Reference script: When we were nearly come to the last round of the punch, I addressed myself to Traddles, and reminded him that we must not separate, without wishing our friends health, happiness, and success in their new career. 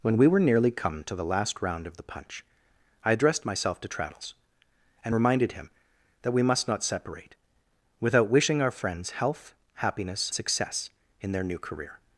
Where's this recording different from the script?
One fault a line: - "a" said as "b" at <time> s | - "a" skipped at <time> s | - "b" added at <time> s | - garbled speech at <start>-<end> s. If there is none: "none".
- "and" skipped at 10.3 s